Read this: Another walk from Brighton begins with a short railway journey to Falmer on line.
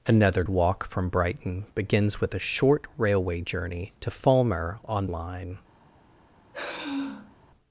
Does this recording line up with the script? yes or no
yes